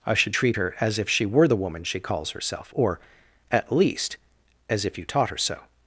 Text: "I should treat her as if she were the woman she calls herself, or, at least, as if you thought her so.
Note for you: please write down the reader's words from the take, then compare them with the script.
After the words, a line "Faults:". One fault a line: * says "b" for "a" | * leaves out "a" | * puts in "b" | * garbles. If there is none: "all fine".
"I should treat her as if she were the woman she calls herself, or, at least, as if you taught her so.
Faults:
* says "taught" for "thought"